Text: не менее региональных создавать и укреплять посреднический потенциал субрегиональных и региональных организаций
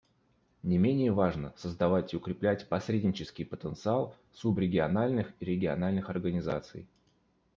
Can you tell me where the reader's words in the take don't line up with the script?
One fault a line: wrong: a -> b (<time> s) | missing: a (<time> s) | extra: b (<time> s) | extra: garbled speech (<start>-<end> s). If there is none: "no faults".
wrong: региональных -> важно (1.1 s)